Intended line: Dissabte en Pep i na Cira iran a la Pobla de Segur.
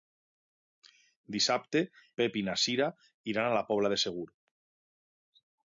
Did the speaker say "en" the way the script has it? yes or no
no